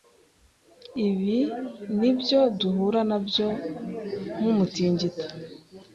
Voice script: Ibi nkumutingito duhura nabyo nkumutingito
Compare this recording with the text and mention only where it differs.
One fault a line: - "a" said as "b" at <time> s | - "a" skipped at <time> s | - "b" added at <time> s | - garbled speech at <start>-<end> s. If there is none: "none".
- "nkumutingito" said as "nibyo" at 2.0 s